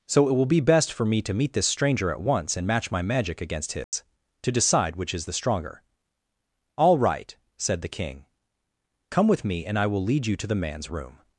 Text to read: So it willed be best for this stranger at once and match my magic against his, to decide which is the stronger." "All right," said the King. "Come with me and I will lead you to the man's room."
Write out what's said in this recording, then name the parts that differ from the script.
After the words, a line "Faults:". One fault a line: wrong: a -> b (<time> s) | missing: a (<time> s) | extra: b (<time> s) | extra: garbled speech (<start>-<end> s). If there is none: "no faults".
So it will be best for me to meet this stranger at once and match my magic against his, to decide which is the stronger." "All right," said the King. "Come with me and I will lead you to the man's room."
Faults:
wrong: willed -> will (0.3 s)
extra: me to meet (1.1 s)